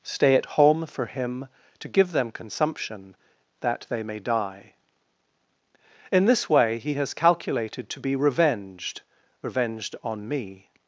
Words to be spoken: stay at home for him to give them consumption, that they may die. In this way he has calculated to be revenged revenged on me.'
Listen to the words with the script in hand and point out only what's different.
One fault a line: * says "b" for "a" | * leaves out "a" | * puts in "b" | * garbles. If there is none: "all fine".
all fine